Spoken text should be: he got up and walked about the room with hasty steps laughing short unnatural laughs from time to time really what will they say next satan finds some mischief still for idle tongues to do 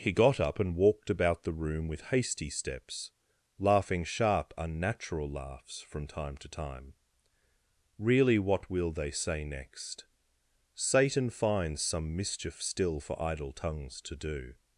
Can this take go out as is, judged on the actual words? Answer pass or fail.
fail